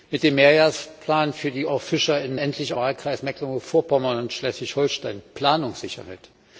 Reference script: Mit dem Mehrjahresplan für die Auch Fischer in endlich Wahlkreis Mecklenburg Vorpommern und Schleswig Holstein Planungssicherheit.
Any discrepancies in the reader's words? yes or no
no